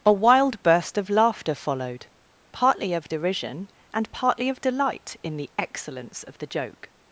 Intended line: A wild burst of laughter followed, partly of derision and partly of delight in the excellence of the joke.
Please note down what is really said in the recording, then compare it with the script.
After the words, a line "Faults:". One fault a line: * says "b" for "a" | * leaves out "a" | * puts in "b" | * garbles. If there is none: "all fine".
A wild burst of laughter followed, partly of derision and partly of delight in the excellence of the joke.
Faults:
all fine